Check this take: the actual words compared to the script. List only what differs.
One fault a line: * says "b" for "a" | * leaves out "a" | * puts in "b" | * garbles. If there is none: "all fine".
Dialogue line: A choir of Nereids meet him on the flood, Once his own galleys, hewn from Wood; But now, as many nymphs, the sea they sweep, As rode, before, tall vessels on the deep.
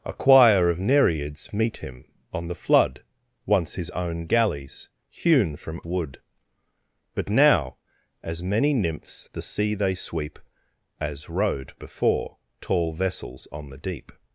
all fine